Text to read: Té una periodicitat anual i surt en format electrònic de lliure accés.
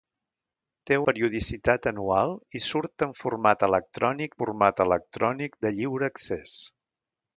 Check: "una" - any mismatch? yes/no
yes